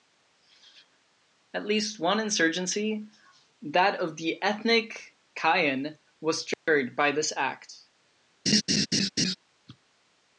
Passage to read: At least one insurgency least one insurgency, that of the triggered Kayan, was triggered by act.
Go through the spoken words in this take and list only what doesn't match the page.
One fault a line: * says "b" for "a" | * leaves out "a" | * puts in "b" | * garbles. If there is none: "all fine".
* leaves out "least one insurgency"
* says "ethnic" for "triggered"
* puts in "this"